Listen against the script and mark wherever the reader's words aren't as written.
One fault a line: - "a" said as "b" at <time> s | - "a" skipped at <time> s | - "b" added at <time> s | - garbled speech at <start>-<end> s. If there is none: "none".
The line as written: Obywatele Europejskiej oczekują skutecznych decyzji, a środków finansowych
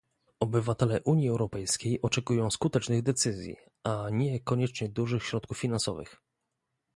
- "Unii" added at 1.0 s
- "nie koniecznie dużych" added at 4.1 s